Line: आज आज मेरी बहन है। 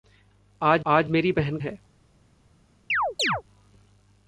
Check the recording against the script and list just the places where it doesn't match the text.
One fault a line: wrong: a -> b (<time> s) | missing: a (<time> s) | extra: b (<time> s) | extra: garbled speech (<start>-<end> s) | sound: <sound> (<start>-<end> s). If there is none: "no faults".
sound: chirp (2.9-3.4 s)